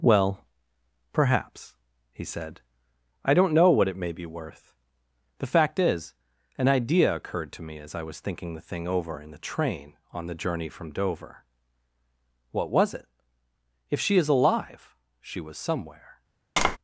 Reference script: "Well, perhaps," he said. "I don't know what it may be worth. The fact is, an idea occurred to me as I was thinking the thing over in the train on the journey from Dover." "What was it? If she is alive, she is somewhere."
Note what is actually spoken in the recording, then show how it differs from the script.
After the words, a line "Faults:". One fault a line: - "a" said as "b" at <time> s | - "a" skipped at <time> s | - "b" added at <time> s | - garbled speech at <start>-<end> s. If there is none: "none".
"Well, perhaps," he said. "I don't know what it may be worth. The fact is, an idea occurred to me as I was thinking the thing over in the train on the journey from Dover." "What was it? If she is alive, she was somewhere."
Faults:
- "is" said as "was" at 15.4 s